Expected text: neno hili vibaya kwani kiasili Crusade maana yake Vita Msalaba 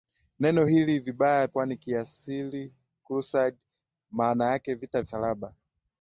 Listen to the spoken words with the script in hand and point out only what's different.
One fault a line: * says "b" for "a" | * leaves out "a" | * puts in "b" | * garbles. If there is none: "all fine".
all fine